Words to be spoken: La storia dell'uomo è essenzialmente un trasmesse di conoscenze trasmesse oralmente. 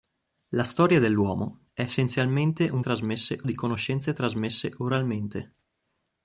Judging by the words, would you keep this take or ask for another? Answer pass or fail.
pass